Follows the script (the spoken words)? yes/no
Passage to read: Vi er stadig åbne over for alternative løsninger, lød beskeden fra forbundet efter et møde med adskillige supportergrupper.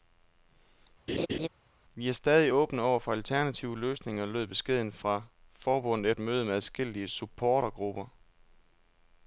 no